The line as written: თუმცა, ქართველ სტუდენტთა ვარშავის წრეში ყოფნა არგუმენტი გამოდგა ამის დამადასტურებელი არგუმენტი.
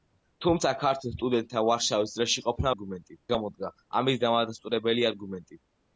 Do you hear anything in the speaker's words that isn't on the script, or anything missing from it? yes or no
no